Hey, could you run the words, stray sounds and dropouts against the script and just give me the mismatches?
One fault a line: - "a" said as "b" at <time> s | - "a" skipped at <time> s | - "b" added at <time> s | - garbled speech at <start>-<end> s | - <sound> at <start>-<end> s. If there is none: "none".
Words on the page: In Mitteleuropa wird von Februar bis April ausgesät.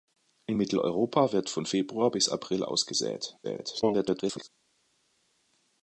- garbled speech at 3.4-4.5 s